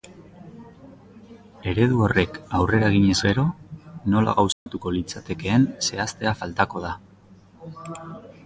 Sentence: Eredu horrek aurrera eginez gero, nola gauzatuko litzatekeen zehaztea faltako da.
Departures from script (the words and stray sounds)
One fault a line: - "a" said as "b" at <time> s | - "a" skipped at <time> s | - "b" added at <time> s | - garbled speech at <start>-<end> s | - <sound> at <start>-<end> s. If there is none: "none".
- dropout at 4.5-4.7 s